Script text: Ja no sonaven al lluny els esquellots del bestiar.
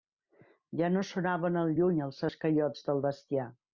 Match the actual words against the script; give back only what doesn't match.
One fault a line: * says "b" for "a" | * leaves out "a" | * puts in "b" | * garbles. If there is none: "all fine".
all fine